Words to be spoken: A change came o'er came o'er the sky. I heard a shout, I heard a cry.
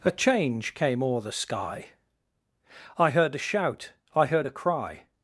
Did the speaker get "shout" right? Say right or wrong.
right